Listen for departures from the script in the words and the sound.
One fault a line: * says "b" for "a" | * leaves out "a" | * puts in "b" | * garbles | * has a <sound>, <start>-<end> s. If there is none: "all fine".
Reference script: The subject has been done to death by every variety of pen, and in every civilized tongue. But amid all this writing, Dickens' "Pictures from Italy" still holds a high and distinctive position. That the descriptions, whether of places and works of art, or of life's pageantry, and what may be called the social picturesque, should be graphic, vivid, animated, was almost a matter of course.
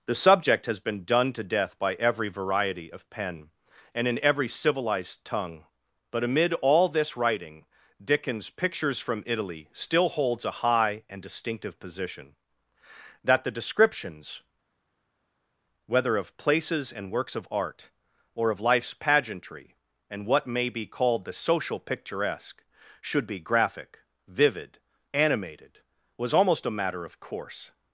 all fine